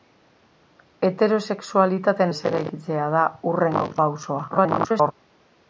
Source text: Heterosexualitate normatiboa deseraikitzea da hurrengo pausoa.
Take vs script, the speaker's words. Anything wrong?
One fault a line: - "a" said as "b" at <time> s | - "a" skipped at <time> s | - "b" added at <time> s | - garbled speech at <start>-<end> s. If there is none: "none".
- "normatiboa" skipped at 2.3 s
- garbled speech at 4.5-5.1 s